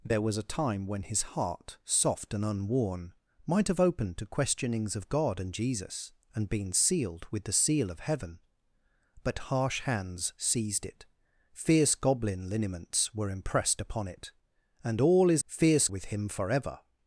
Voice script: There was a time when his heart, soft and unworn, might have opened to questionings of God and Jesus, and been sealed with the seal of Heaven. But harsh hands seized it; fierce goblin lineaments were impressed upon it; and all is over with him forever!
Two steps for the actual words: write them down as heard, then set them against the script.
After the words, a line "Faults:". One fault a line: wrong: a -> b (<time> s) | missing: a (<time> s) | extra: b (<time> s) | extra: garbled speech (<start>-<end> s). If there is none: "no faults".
There was a time when his heart, soft and unworn, might have opened to questionings of God and Jesus, and been sealed with the seal of Heaven. But harsh hands seized it; fierce goblin lineaments were impressed upon it; and all is fierce with him forever!
Faults:
wrong: over -> fierce (15.5 s)